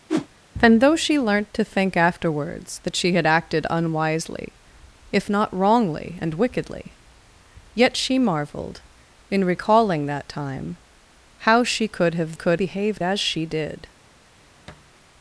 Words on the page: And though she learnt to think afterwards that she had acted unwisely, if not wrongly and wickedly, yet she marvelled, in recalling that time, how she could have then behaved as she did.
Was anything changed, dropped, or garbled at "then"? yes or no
yes